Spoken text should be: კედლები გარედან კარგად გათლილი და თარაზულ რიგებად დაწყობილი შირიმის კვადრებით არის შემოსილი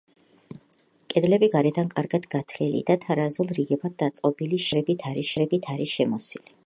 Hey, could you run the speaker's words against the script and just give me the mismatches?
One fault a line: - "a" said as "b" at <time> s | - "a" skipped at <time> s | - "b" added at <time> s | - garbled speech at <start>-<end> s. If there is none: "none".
- "კვადრებით არის" added at 5.4 s